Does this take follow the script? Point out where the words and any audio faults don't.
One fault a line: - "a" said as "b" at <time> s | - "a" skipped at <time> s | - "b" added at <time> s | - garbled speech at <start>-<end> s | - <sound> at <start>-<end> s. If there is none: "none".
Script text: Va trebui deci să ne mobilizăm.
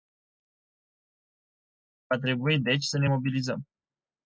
none